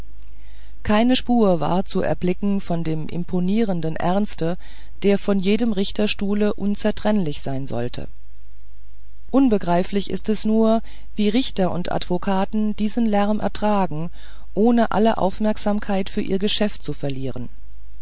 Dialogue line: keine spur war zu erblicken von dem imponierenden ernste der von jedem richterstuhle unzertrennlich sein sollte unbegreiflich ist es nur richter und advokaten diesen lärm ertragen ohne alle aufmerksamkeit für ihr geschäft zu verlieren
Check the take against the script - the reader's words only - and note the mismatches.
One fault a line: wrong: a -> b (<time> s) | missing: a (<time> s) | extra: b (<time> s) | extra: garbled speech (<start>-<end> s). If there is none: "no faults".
extra: wie (11.1 s)